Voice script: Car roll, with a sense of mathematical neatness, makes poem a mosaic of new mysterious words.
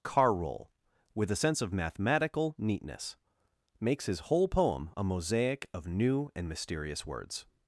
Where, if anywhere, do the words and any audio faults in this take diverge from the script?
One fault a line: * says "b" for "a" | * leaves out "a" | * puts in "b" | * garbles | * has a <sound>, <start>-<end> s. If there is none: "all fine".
* puts in "his whole"
* puts in "and"